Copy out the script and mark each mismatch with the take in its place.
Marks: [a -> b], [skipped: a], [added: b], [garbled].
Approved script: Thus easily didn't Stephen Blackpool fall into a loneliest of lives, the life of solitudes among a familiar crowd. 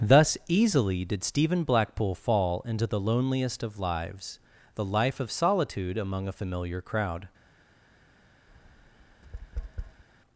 Thus easily [didn't -> did] Stephen Blackpool fall into [a -> the] loneliest of lives, the life of [solitudes -> solitude] among a familiar crowd.